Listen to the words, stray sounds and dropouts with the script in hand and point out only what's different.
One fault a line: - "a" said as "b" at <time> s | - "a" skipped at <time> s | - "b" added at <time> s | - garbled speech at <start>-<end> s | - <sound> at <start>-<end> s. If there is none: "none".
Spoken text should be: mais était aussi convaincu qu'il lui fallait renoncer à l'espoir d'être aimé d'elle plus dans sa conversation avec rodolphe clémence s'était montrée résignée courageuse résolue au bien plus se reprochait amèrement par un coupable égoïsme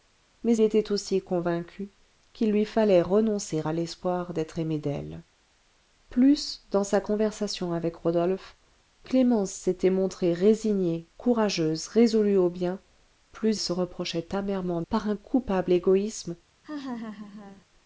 - laugh at 16.6-17.7 s